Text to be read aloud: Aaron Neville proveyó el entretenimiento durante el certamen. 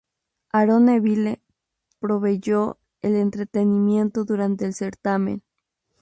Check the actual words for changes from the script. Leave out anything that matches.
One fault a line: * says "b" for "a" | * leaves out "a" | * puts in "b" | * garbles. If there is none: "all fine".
all fine